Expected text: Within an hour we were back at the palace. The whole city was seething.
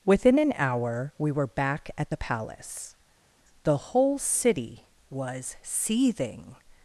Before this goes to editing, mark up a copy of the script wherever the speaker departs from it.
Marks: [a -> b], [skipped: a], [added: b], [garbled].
Within an hour we were back at the palace. The whole city was seething.